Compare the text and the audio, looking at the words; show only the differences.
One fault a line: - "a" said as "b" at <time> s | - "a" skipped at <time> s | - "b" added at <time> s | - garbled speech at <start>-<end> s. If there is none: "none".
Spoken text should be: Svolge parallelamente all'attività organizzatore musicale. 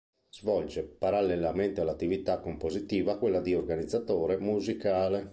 - "compositiva quella di" added at 2.4 s